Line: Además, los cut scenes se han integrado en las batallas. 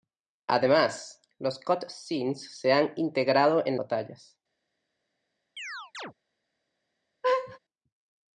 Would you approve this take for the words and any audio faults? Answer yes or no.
no